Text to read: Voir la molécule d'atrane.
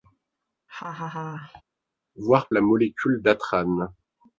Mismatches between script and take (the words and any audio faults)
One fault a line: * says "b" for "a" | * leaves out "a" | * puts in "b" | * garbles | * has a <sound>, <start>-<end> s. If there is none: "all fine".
* has a laugh, 0.7-1.6 s